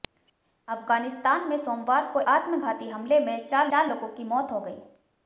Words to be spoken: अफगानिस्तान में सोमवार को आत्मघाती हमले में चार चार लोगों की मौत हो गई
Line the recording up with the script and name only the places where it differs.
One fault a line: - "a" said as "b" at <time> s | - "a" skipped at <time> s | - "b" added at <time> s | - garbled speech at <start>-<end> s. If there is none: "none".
none